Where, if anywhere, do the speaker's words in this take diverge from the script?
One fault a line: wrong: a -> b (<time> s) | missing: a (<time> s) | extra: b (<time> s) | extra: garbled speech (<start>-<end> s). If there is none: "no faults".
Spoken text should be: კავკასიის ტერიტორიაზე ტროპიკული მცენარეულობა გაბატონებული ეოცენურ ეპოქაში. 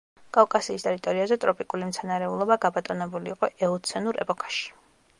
extra: იყო (3.3 s)